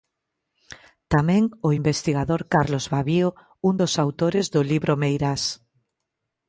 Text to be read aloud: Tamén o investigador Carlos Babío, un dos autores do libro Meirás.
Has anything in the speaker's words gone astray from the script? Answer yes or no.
no